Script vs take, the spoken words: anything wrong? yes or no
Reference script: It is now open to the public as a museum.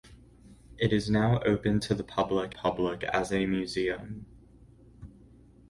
yes